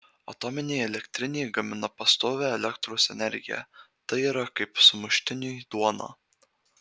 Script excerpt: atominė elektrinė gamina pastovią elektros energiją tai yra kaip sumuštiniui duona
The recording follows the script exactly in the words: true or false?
true